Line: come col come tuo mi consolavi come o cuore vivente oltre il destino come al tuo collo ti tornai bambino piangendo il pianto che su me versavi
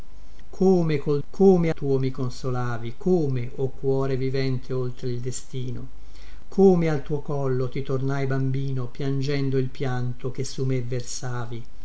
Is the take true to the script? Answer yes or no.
yes